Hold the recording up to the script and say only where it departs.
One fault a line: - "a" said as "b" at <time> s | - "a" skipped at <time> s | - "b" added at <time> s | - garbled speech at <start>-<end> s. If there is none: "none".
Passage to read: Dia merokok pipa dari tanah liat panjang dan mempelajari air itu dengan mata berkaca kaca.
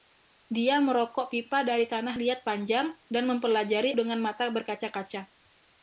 - "air itu" skipped at 3.9 s